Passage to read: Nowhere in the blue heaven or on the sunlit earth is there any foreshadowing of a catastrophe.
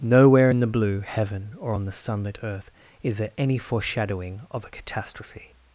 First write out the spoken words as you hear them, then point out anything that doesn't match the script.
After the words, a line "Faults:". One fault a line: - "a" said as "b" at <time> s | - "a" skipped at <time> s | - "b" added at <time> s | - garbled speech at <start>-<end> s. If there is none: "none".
Nowhere in the blue heaven or on the sunlit earth is there any foreshadowing of a catastrophe.
Faults:
none